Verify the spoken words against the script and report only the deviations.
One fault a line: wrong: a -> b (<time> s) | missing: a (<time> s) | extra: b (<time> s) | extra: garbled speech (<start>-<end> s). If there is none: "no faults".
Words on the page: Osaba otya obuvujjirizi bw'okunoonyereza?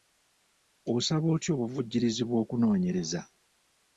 no faults